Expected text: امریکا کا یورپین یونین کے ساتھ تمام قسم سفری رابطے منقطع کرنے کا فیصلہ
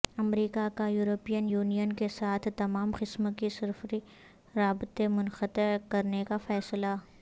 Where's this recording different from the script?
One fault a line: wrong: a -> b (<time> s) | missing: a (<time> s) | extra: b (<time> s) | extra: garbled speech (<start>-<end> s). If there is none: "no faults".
extra: کے (3.4 s)